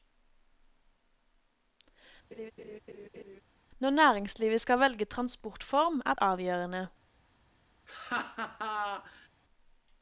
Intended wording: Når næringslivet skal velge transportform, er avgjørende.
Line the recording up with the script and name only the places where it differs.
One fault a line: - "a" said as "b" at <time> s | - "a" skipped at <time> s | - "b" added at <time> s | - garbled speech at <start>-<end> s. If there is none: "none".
none